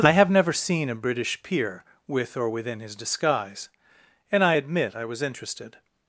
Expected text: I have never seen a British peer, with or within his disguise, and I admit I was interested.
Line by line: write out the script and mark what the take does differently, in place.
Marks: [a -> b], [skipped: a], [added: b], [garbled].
I have never seen a British peer, with or within his disguise, and I admit I was interested.